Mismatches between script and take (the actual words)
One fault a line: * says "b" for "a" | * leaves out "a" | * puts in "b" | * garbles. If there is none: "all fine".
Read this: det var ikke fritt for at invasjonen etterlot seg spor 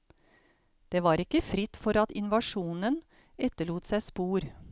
all fine